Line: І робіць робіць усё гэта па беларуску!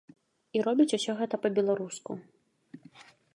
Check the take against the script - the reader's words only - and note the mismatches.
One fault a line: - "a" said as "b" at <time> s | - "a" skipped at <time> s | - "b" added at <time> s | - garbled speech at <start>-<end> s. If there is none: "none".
- "робіць" skipped at 0.9 s